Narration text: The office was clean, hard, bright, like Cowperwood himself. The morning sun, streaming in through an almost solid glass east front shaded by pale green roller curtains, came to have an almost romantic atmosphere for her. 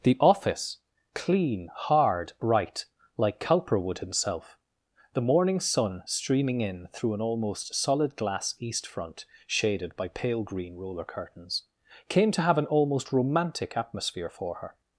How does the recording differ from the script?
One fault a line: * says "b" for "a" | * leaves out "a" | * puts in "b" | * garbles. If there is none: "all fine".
* leaves out "was"